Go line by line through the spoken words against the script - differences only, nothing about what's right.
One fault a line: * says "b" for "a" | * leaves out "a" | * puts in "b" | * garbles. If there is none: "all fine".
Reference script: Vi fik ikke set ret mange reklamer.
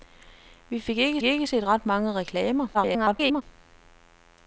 * puts in "ikke"
* garbles